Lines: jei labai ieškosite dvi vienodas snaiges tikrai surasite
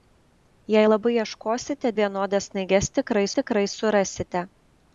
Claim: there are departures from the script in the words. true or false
true